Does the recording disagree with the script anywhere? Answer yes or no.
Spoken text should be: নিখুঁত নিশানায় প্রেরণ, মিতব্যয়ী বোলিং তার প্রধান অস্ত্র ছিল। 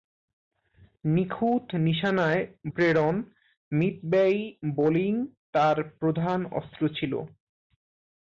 no